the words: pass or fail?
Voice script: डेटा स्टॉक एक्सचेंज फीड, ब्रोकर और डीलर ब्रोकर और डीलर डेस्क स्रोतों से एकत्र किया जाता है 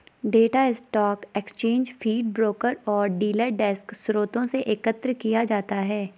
fail